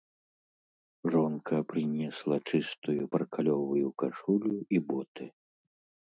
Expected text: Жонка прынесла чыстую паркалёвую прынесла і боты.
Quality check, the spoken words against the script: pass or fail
fail